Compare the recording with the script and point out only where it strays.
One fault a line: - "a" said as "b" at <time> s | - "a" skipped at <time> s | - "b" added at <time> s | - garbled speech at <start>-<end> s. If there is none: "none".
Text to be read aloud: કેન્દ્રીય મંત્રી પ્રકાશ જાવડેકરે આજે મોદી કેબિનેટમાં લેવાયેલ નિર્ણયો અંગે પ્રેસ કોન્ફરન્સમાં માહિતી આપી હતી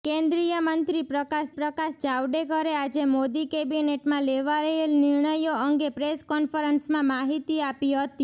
- "પ્રકાશ" added at 1.5 s